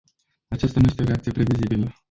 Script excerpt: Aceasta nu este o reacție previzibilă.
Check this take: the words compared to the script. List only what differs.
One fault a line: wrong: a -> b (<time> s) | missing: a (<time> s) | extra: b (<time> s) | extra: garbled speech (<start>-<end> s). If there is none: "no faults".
no faults